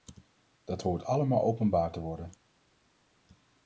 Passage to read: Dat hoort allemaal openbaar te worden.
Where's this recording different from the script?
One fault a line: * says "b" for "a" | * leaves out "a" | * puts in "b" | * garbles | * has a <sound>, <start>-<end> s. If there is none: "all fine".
all fine